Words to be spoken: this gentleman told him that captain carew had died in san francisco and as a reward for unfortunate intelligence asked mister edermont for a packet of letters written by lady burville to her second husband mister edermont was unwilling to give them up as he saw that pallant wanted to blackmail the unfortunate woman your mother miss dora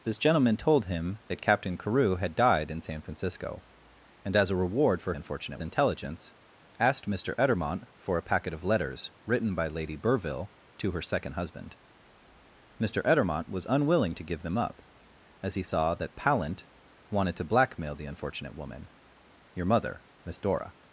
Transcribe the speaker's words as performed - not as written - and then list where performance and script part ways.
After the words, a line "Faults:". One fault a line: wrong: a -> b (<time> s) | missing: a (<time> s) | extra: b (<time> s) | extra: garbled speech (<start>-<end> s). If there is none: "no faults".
this gentleman told him that captain carew had died in san francisco and as a reward for unfortunate intelligence asked mister edermont for a packet of letters written by lady burville to her second husband mister edermont was unwilling to give them up as he saw that pallant wanted to blackmail the unfortunate woman your mother miss dora
Faults:
no faults